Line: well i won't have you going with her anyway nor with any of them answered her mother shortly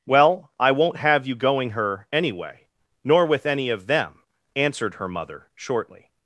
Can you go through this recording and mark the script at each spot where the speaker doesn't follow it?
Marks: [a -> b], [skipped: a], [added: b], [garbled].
well i won't have you going [skipped: with] her anyway nor with any of them answered her mother shortly